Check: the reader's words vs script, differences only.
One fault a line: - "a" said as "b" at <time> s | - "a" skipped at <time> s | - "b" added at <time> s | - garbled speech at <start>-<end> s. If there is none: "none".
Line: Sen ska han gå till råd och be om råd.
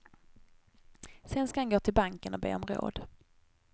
- "råd" said as "banken" at 1.9 s